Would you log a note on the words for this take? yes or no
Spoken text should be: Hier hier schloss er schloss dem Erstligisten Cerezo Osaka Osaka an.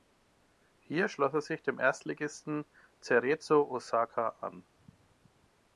yes